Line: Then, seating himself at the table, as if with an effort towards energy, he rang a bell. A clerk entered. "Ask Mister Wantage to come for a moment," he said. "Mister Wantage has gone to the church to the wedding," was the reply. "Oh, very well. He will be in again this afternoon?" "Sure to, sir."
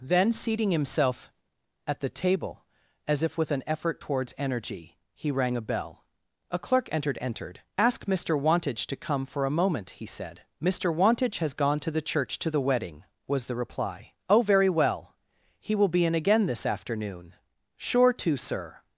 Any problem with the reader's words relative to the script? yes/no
yes